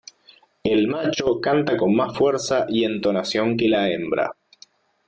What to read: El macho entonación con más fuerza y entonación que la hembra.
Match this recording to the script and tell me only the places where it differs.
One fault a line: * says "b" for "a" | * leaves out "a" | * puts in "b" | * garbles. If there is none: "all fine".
* says "canta" for "entonación"